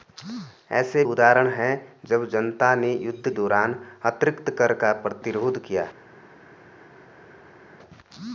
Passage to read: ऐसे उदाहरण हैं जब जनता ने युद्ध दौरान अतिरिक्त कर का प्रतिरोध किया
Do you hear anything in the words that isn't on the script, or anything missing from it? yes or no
no